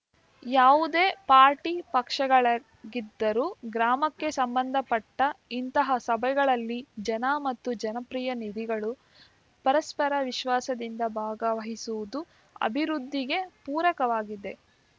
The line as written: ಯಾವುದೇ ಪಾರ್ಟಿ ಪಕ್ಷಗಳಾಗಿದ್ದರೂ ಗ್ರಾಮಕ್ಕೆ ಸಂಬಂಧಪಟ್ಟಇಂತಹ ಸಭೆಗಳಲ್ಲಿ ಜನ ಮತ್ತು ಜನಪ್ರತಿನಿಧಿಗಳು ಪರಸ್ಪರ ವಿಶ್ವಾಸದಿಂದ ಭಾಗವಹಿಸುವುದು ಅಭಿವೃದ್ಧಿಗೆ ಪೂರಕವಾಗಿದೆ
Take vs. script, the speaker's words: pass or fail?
pass